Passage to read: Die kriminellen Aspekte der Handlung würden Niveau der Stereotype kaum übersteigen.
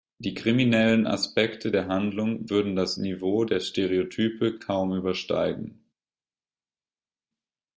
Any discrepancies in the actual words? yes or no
yes